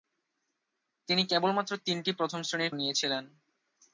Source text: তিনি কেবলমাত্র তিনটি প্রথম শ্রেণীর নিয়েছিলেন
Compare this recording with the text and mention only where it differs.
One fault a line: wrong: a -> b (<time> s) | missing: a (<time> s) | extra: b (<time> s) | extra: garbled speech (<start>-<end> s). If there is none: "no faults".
no faults